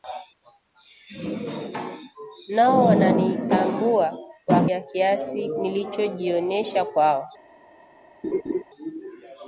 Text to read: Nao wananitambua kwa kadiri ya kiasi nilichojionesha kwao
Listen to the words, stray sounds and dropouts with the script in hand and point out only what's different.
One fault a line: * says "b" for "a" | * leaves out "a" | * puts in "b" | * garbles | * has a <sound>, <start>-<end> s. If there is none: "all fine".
* leaves out "kadiri"
* has a laugh, 8.2-8.6 s